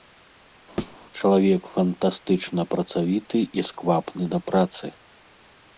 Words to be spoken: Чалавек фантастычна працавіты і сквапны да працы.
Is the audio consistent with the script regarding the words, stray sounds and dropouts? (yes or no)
no